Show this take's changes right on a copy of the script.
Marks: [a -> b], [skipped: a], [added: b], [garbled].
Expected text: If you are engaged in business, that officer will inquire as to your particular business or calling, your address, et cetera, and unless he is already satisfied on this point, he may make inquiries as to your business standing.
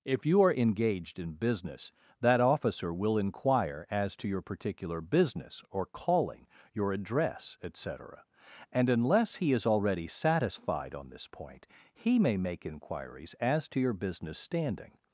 If you are engaged in business, that officer will inquire as to your particular business or calling, your address, et cetera, and unless he is already satisfied on this point, he may make inquiries as to your business standing.